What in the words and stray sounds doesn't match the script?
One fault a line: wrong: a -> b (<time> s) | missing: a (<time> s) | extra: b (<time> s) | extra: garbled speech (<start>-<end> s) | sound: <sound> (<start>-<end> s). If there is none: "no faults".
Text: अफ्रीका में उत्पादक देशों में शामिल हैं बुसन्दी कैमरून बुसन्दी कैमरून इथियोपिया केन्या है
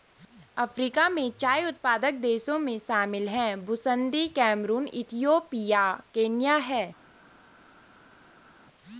extra: चाय (1.3 s)
missing: बुसन्दी कैमरून (4.9 s)